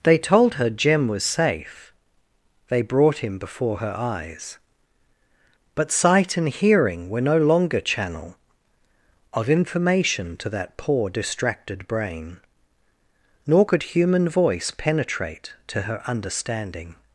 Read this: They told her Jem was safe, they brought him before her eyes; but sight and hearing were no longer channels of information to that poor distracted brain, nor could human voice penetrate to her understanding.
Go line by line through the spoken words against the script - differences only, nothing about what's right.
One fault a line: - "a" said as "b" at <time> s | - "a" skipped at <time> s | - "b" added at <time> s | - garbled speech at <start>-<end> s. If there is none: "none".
- "channels" said as "channel" at 7.8 s